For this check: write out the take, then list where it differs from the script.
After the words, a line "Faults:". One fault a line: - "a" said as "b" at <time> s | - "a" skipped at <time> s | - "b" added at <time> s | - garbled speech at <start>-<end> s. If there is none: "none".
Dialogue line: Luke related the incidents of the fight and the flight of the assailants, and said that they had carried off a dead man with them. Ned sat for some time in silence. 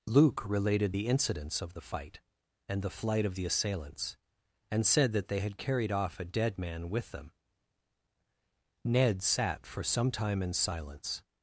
Luke related the incidents of the fight and the flight of the assailants, and said that they had carried off a dead man with them. Ned sat for some time in silence.
Faults:
none